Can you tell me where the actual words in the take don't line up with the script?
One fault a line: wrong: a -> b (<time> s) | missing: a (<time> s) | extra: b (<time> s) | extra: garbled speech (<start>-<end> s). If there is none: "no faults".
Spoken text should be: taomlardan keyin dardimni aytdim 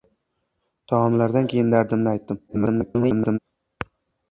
extra: garbled speech (2.5-3.4 s)